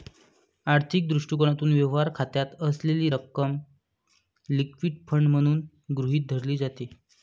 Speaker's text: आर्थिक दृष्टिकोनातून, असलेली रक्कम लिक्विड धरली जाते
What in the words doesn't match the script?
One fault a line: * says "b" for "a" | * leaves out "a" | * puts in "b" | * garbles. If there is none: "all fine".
* puts in "व्यवहार खात्यात"
* puts in "फंड म्हणून गृहीत"